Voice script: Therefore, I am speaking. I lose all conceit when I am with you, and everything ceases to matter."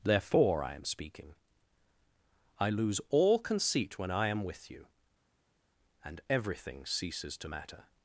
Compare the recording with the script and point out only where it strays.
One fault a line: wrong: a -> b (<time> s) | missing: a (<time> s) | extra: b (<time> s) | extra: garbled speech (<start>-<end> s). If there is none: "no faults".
no faults